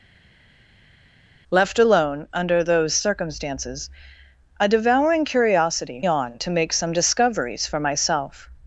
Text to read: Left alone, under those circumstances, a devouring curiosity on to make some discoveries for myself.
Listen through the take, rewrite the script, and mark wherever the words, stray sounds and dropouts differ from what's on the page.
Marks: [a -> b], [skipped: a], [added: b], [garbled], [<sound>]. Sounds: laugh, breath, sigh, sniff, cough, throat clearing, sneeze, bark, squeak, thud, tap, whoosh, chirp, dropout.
Left alone, under those circumstances, a devouring curiosity on to make some discoveries for myself.